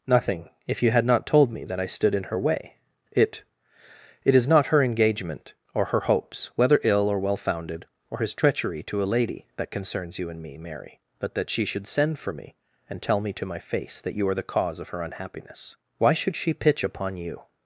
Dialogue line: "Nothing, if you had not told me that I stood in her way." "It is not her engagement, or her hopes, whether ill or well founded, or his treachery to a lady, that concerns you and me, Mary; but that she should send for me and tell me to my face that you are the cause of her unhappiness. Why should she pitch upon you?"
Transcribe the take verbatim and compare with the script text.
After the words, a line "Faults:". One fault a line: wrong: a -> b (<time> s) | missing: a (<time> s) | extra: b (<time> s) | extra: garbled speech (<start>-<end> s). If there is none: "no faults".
"Nothing, if you had not told me that I stood in her way." "It It is not her engagement, or her hopes, whether ill or well founded, or his treachery to a lady, that concerns you and me, Mary; but that she should send for me and tell me to my face that you are the cause of her unhappiness. Why should she pitch upon you?"
Faults:
extra: It (4.2 s)